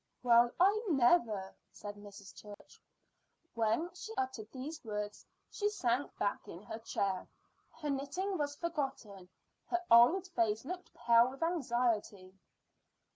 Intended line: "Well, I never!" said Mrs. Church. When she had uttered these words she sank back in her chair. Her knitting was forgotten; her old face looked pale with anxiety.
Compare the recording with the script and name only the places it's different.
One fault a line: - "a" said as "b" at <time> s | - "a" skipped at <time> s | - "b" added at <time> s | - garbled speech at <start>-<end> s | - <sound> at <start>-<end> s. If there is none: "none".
- dropout at 2.5-2.6 s
- "had" skipped at 4.2 s